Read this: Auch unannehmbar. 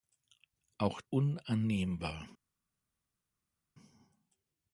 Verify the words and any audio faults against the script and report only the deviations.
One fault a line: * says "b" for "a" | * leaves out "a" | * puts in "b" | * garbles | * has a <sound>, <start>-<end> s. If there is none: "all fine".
all fine